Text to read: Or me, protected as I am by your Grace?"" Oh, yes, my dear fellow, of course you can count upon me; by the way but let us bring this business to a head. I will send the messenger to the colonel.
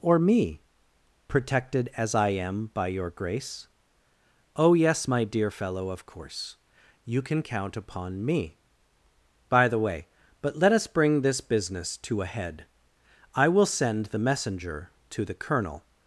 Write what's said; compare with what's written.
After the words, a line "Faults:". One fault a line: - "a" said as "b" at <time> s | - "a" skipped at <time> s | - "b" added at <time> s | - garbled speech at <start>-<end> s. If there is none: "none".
Or me, protected as I am by your Grace?"" Oh, yes, my dear fellow, of course you can count upon me; by the way but let us bring this business to a head. I will send the messenger to the colonel.
Faults:
none